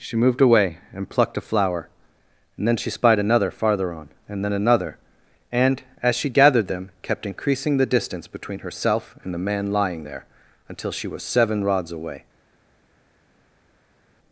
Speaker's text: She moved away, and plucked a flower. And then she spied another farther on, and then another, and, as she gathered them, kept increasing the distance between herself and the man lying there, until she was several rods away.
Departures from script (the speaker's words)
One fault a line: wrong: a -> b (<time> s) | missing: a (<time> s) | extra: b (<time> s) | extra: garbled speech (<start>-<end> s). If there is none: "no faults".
wrong: several -> seven (11.2 s)